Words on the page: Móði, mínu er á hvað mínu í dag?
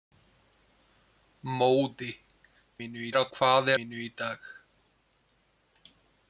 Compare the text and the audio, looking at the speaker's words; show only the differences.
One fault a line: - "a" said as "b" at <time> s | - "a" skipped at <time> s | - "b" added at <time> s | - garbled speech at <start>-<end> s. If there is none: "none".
none